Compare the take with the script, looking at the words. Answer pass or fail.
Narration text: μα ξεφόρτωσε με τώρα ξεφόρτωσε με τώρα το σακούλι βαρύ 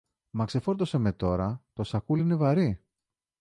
fail